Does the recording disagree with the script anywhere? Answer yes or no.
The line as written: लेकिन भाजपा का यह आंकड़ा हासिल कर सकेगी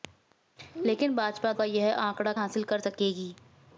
no